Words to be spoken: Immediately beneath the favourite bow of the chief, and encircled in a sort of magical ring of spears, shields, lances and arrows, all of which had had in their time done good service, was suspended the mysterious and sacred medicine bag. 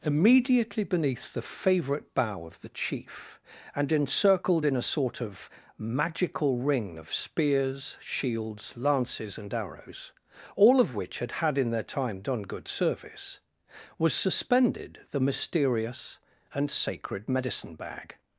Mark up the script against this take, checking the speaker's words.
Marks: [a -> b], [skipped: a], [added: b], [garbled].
Immediately beneath the favourite bow of the chief, and encircled in a sort of magical ring of spears, shields, lances and arrows, all of which had had in their time done good service, was suspended the mysterious and sacred medicine bag.